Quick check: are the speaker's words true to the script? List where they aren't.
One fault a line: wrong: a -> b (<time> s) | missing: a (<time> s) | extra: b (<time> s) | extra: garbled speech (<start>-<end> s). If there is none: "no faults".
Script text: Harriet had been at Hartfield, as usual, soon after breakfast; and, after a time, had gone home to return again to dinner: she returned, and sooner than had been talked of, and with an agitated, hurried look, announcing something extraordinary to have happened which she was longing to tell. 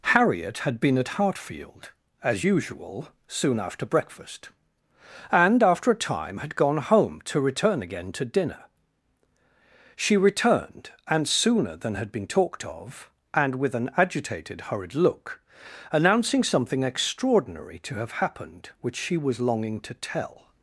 no faults